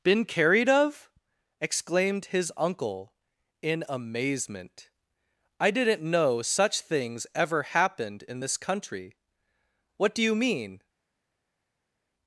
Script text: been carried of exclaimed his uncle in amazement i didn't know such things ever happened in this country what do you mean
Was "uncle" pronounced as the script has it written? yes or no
yes